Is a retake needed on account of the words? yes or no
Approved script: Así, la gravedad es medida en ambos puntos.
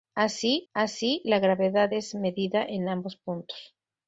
yes